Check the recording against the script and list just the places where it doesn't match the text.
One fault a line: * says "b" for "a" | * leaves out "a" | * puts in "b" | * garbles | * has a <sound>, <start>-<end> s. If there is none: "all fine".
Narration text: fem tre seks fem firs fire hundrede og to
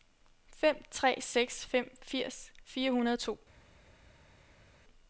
all fine